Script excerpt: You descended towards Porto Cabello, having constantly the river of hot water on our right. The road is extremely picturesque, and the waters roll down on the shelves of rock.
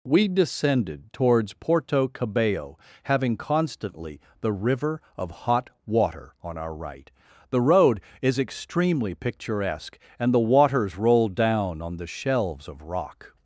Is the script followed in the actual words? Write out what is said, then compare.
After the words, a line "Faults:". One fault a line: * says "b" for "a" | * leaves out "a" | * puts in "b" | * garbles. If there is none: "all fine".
We descended towards Porto Cabello, having constantly the river of hot water on our right. The road is extremely picturesque, and the waters roll down on the shelves of rock.
Faults:
* says "We" for "You"